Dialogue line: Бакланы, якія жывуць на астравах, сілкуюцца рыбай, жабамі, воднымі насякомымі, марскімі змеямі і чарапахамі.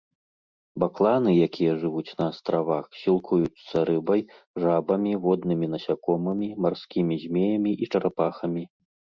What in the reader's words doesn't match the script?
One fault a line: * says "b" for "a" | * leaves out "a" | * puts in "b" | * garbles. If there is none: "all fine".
all fine